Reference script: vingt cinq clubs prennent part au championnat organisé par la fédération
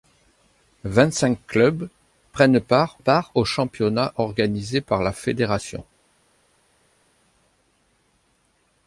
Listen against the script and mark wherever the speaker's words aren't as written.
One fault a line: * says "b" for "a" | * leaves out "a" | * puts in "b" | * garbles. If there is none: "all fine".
* puts in "part"